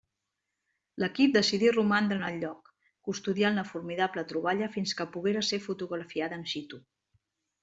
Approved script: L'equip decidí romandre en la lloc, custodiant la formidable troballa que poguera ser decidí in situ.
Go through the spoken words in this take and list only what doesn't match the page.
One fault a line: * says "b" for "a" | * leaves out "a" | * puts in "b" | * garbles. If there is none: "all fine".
* says "el" for "la"
* puts in "fins"
* says "fotografiada" for "decidí"